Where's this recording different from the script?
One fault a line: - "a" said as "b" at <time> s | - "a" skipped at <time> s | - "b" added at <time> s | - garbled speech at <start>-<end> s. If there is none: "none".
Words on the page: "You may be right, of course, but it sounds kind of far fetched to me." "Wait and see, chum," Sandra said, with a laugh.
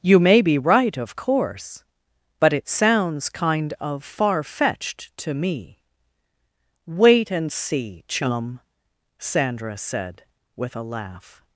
none